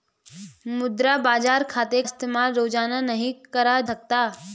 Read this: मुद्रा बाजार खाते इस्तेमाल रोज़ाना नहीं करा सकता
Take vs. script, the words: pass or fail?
pass